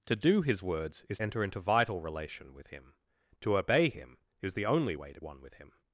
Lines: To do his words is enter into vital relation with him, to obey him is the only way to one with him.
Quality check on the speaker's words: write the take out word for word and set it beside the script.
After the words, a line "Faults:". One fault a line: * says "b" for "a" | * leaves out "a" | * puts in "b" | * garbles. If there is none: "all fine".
To do his words is enter into vital relation with him, to obey him is the only way to one with him.
Faults:
all fine